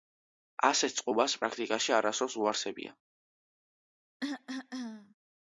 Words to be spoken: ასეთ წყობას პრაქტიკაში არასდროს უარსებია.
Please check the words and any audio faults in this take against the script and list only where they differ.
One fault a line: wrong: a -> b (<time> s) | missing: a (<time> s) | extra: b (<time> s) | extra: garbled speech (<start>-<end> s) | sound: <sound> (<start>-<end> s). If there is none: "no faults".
sound: cough (4.2-5.2 s)